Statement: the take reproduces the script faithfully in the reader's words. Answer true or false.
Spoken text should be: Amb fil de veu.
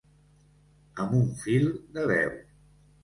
false